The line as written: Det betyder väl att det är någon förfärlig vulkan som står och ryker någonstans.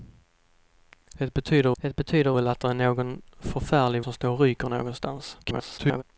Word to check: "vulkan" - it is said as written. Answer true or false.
false